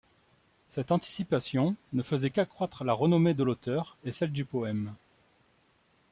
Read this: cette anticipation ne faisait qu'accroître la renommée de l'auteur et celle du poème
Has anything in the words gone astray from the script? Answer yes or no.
no